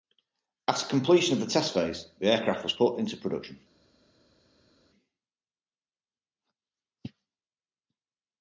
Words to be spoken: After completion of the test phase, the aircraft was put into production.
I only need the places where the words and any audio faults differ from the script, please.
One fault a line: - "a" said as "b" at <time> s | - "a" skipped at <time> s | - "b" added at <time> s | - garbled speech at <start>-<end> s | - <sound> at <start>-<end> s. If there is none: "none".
none